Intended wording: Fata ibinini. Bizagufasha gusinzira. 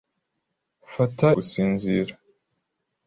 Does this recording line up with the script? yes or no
no